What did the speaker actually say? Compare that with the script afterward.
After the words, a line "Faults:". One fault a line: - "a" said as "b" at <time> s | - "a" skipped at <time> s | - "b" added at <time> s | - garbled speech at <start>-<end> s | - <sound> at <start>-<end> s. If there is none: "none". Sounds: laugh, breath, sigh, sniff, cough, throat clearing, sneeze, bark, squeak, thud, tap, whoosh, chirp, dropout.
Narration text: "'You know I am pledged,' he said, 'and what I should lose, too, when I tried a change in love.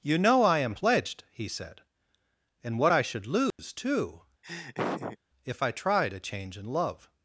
"'You know I am pledged,' he said, 'and what I should lose, too, if I tried a change in love.
Faults:
- dropout at 3.5-3.6 s
- laugh at 4.4-5.2 s
- "when" said as "if" at 5.4 s